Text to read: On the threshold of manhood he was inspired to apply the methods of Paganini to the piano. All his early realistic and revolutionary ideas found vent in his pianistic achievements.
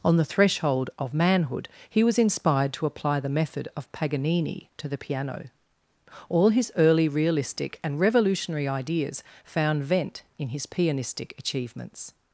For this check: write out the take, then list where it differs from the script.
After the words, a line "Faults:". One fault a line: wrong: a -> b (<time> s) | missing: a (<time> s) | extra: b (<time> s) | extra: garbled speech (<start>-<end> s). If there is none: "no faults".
On the threshold of manhood he was inspired to apply the method of Paganini to the piano. All his early realistic and revolutionary ideas found vent in his pianistic achievements.
Faults:
wrong: methods -> method (3.3 s)